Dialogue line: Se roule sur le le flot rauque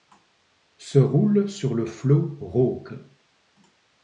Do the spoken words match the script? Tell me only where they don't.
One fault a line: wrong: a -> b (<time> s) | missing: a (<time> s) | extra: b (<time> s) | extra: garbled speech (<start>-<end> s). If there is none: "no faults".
missing: le (1.9 s)